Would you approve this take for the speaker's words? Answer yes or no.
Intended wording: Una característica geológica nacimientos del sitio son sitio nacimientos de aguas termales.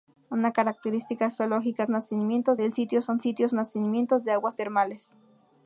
yes